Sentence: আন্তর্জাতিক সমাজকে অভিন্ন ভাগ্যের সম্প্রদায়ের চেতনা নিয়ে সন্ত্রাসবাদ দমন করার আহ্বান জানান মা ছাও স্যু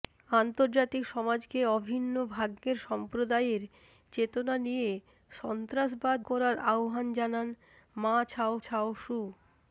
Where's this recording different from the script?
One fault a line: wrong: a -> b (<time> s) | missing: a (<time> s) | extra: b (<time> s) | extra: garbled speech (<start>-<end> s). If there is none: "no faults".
missing: দমন (6.2 s)
extra: ছাও (8.6 s)